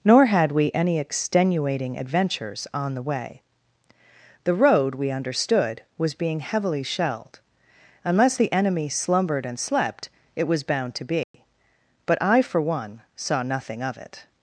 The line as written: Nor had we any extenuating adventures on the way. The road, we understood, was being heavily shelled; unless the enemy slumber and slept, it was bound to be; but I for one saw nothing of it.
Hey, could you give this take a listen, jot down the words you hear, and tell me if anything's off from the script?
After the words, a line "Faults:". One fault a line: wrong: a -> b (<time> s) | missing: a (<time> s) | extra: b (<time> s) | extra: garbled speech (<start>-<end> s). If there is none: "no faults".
Nor had we any extenuating adventures on the way. The road, we understood, was being heavily shelled; unless the enemy slumbered and slept, it was bound to be; but I for one saw nothing of it.
Faults:
wrong: slumber -> slumbered (8.9 s)